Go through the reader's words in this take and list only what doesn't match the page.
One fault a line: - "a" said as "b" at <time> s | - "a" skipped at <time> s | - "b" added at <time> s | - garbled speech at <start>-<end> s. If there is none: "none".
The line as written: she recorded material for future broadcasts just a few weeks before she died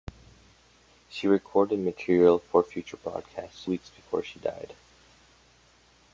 - "just a few" skipped at 3.7 s